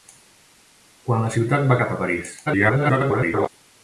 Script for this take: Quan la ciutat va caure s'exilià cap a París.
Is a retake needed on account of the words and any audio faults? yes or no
yes